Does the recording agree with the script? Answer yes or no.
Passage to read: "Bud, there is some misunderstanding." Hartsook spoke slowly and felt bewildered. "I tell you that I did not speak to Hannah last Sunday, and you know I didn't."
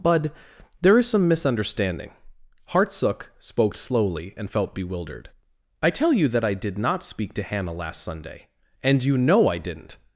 yes